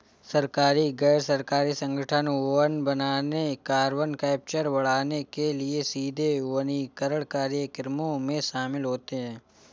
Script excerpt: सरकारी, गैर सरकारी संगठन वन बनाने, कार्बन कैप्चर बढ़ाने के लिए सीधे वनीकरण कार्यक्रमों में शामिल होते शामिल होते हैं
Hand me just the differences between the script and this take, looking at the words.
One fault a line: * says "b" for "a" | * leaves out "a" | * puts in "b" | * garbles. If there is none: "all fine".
* leaves out "शामिल होते"